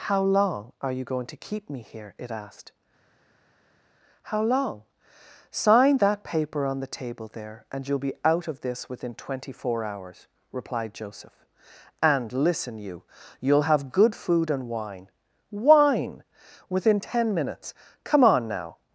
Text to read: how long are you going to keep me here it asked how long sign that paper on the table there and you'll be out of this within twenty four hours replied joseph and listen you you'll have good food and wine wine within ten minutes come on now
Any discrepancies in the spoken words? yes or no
no